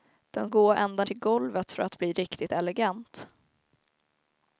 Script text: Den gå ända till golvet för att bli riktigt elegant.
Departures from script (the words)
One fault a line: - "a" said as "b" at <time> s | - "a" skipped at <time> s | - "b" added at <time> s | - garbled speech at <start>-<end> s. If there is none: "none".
none